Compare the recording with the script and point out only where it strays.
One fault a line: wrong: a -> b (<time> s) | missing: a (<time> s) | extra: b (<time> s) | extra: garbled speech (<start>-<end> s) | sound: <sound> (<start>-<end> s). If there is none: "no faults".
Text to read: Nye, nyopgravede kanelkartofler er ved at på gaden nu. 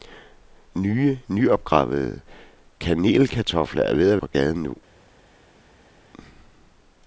no faults